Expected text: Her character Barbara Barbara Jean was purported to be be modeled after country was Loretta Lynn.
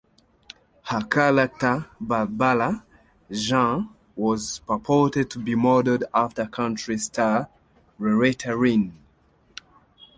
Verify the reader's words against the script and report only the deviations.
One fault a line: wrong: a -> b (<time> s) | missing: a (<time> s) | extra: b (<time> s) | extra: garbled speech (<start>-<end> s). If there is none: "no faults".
missing: Barbara (2.8 s)
missing: be (5.5 s)
wrong: was -> star (7.0 s)